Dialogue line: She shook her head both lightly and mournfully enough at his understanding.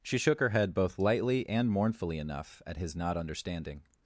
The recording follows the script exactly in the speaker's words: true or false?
false